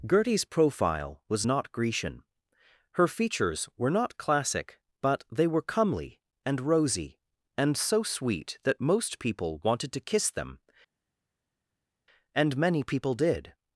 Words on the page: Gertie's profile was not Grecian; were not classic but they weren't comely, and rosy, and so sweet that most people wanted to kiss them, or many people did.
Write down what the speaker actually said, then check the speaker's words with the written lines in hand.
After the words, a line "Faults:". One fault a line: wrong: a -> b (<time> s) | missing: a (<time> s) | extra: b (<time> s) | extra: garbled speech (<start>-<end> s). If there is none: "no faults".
Gertie's profile was not Grecian; her features were not classic but they were comely, and rosy, and so sweet that most people wanted to kiss them, and many people did.
Faults:
extra: her features (2.9 s)
wrong: weren't -> were (5.5 s)
wrong: or -> and (12.3 s)